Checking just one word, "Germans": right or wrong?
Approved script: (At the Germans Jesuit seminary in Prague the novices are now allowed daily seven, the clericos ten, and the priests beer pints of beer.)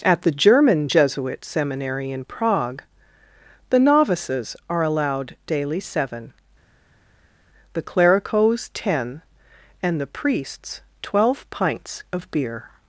wrong